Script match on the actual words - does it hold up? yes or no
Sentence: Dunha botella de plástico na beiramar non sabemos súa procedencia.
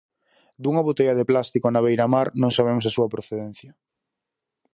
no